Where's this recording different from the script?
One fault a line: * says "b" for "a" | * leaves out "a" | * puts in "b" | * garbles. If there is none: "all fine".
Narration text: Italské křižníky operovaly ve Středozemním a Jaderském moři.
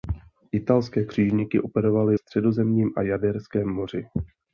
* leaves out "ve"